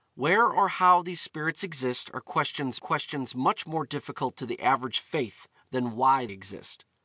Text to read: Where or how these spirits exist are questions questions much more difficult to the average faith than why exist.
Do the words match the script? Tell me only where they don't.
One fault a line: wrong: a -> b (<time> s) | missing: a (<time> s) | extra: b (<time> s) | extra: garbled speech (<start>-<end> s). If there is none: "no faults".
no faults